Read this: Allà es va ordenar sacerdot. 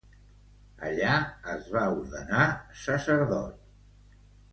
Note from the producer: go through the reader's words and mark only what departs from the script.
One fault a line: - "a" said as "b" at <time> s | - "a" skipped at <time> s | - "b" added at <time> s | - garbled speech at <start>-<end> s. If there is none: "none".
none